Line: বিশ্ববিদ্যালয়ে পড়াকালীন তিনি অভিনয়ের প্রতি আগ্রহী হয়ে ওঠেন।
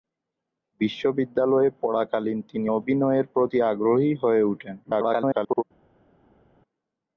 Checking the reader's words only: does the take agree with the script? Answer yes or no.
no